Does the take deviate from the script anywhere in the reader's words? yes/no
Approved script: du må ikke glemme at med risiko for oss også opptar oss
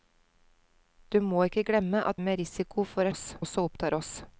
no